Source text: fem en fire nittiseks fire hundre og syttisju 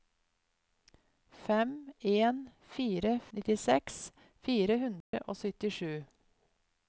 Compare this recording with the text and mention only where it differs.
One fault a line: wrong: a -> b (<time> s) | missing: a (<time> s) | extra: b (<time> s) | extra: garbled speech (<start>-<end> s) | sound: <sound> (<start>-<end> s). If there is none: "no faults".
sound: dropout (5.0-5.1 s)